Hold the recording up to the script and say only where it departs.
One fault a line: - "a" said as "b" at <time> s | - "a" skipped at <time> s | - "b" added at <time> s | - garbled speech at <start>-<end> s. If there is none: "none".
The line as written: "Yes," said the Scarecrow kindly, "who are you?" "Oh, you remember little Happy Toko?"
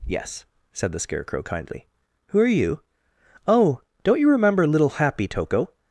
- "don't" added at 4.0 s